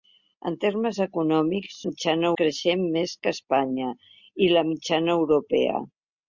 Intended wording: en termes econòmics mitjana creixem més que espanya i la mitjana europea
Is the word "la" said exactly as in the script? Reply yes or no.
yes